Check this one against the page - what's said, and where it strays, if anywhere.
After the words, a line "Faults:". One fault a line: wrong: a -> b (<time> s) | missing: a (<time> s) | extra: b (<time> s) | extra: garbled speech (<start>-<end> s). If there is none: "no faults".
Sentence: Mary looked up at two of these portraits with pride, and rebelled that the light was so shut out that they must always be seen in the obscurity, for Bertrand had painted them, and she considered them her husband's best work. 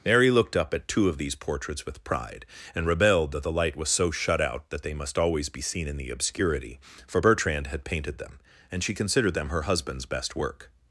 Mary looked up at two of these portraits with pride, and rebelled that the light was so shut out that they must always be seen in the obscurity, for Bertrand had painted them, and she considered them her husband's best work.
Faults:
no faults